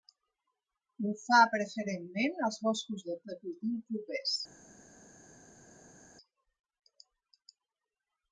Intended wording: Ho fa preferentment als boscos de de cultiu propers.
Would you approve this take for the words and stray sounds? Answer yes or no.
yes